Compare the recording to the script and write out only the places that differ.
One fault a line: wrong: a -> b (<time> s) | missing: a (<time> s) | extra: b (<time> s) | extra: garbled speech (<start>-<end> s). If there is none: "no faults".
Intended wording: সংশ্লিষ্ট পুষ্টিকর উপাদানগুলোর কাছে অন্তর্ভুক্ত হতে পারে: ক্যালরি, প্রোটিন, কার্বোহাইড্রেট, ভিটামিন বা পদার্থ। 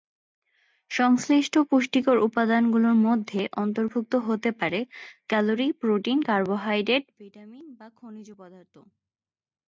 wrong: কাছে -> মধ্যে (3.1 s)
extra: খনিজ (8.0 s)